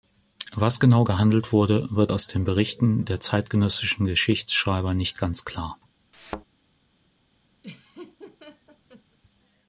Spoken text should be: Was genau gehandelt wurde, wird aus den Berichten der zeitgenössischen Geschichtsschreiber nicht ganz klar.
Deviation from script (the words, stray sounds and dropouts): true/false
true